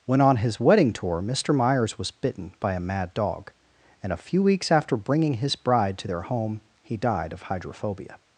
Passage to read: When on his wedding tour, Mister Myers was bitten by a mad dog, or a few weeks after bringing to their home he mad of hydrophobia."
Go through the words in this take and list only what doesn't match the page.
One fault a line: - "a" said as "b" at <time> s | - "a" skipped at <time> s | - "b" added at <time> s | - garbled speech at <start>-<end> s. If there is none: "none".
- "or" said as "and" at 4.0 s
- "his bride" added at 5.3 s
- "mad" said as "died" at 6.9 s